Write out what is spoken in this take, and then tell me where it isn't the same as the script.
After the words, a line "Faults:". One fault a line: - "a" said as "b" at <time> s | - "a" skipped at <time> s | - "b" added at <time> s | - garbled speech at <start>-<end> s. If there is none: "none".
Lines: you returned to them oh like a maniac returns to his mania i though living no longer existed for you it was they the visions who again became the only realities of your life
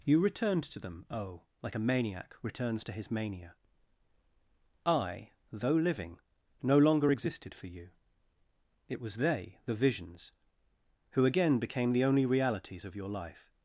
you returned to them oh like a maniac returns to his mania i though living no longer existed for you it was they the visions who again became the only realities of your life
Faults:
none